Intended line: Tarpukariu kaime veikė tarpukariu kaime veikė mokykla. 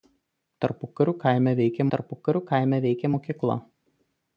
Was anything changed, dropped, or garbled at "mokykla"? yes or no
no